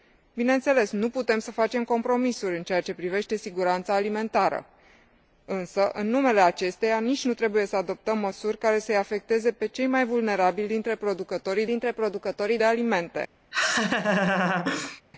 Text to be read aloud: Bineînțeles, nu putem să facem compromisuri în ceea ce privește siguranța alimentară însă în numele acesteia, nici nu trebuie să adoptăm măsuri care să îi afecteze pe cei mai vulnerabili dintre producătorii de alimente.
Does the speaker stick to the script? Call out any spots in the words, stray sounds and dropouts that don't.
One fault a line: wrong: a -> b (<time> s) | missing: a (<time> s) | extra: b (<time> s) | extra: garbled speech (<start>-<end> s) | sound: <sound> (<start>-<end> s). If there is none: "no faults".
extra: dintre producătorii (11.7 s)
sound: laugh (13.5-15.0 s)